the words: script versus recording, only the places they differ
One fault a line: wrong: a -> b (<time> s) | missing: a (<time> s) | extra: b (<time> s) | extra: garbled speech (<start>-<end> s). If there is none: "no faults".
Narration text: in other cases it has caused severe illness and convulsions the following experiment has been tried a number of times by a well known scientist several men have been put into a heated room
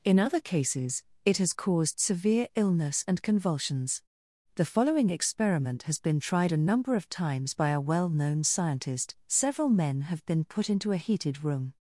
no faults